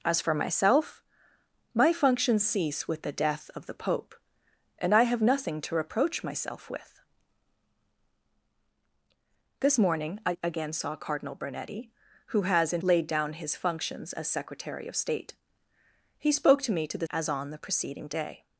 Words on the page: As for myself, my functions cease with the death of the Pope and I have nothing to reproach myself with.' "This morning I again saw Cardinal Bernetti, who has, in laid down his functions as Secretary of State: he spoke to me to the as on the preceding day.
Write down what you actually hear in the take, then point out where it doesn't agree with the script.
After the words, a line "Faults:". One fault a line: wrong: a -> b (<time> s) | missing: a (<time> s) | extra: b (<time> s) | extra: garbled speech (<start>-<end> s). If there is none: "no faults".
As for myself, my functions cease with the death of the Pope and I have nothing to reproach myself with.' "This morning I again saw Cardinal Bernetti, who has, in laid down his functions as Secretary of State: he spoke to me to the as on the preceding day.
Faults:
no faults